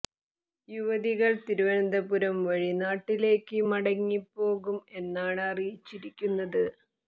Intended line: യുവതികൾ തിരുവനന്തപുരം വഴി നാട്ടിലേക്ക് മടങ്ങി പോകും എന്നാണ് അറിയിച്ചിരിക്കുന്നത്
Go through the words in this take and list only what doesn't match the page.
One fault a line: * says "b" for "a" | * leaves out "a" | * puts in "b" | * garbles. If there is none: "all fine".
all fine